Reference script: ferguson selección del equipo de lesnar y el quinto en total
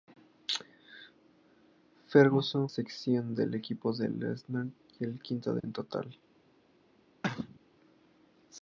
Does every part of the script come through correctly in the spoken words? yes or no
yes